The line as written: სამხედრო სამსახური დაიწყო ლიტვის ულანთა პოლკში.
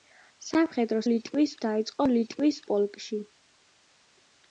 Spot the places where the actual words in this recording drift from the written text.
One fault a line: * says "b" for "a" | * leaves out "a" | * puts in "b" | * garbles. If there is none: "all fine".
* says "ლიტვის" for "სამსახური"
* leaves out "ულანთა"